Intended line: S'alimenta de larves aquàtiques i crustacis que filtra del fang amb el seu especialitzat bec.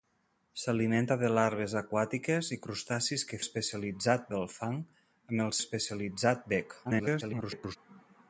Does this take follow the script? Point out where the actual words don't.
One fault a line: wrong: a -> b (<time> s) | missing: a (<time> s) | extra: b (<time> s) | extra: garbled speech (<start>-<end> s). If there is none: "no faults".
wrong: filtra -> especialitzat (3.4 s)
missing: seu (5.5 s)
extra: garbled speech (6.8-7.8 s)